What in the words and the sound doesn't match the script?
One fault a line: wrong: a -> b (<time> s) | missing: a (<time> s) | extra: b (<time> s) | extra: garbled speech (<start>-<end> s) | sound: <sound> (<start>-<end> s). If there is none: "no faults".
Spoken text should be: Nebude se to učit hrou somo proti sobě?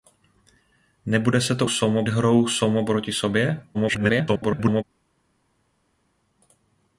wrong: učit -> somo (1.7 s)
extra: garbled speech (3.7-4.8 s)